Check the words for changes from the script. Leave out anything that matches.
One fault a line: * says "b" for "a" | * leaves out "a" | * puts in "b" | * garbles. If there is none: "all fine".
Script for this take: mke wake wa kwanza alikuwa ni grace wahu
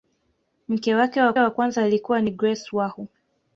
* puts in "wa"